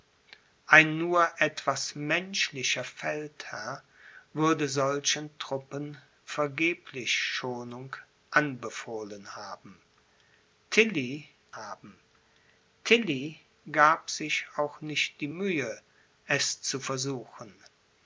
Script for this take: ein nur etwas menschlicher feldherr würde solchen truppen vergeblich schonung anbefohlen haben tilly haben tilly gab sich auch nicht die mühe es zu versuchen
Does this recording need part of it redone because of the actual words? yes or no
no